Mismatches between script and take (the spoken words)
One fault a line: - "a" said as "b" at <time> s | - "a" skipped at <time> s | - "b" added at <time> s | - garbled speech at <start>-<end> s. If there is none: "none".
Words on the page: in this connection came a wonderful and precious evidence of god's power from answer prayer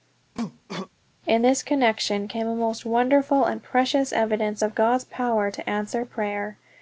- "most" added at 2.5 s
- "from" said as "to" at 5.5 s